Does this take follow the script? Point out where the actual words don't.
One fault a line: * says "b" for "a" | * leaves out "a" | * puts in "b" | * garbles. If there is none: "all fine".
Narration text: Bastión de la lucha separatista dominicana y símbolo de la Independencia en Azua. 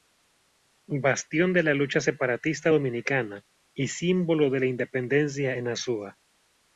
all fine